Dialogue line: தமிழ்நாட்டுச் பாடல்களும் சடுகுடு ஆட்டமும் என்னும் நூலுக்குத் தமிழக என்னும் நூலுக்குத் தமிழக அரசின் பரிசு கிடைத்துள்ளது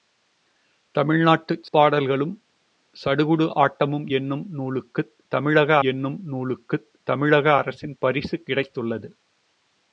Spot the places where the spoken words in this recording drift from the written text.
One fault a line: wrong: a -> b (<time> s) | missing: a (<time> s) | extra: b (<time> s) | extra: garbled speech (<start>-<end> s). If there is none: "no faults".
no faults